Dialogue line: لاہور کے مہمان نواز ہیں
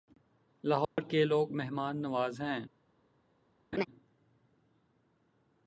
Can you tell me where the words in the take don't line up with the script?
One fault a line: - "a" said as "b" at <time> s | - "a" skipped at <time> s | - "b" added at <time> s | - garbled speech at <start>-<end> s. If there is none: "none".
- "لوگ" added at 1.2 s